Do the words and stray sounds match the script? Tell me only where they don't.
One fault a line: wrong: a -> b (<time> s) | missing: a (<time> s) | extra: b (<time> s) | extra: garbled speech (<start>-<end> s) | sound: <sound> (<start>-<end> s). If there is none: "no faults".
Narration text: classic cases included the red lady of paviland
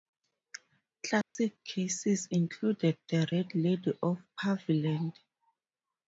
sound: dropout (1.2-1.4 s)